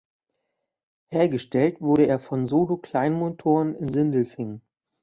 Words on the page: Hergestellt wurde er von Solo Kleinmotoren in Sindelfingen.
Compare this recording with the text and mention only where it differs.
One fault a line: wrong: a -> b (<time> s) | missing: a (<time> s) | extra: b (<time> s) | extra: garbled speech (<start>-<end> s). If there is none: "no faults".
no faults